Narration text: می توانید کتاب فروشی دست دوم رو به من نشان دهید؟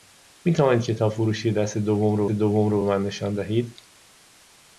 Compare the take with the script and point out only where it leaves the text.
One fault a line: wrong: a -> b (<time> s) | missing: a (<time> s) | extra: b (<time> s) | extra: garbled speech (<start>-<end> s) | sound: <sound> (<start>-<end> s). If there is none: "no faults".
extra: دوم رو (2.3 s)